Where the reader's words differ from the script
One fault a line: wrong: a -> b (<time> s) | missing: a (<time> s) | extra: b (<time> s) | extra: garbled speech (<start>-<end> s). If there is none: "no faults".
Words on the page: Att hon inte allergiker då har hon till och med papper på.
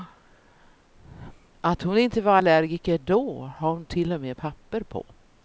extra: var (2.2 s)